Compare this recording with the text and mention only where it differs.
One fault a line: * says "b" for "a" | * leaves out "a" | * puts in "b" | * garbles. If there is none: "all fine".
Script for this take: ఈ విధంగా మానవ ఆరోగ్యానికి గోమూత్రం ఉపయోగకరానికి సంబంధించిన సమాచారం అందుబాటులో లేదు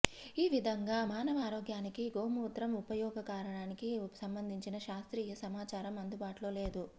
* puts in "శాస్త్రీయ"